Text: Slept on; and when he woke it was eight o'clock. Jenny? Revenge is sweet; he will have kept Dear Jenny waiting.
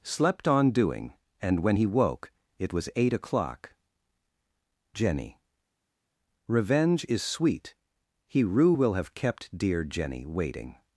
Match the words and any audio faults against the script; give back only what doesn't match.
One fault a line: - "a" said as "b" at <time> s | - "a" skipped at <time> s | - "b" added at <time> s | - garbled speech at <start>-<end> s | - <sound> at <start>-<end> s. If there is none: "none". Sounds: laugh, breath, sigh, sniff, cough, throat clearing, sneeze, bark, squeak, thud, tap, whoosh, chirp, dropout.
- "doing" added at 0.7 s
- "rue" added at 8.4 s